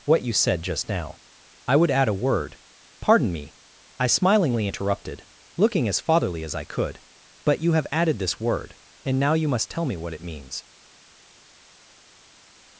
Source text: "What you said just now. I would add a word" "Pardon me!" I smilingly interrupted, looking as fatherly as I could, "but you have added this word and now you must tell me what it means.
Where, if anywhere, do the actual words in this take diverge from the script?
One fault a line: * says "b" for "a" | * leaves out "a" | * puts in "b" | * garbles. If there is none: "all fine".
all fine